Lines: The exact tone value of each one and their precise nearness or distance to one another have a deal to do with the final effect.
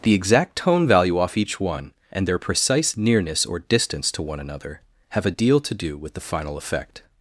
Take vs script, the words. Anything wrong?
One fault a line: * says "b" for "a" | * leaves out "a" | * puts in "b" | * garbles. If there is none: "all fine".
* says "off" for "of"